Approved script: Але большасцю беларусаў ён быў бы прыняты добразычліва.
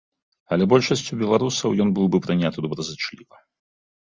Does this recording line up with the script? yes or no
yes